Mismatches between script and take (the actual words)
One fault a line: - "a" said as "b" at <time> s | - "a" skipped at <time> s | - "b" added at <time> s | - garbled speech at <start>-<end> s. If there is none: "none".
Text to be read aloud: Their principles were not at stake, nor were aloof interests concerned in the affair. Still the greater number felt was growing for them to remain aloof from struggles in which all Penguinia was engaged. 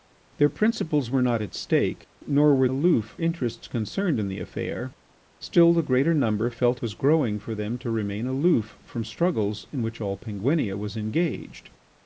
none